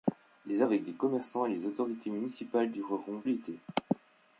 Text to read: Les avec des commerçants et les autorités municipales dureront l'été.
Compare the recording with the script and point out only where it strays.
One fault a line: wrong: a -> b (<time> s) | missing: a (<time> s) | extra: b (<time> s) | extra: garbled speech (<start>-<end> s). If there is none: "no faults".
no faults